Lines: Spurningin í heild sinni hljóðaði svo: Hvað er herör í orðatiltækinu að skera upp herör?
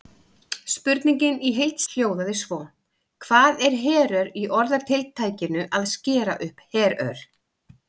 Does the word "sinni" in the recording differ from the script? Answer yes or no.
yes